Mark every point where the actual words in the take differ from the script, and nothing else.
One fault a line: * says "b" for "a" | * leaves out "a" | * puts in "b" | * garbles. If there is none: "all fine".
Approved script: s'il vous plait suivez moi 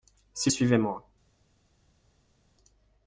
* leaves out "vous plait"